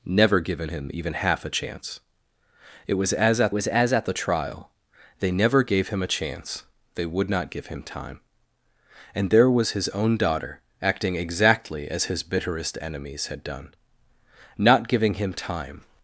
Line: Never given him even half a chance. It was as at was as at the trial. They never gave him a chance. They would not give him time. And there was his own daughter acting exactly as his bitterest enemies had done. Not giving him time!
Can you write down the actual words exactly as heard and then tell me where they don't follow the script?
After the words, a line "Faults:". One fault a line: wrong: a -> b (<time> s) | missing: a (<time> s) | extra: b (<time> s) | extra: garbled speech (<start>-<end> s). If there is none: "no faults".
Never given him even half a chance. It was as at was as at the trial. They never gave him a chance. They would not give him time. And there was his own daughter acting exactly as his bitterest enemies had done. Not giving him time!
Faults:
no faults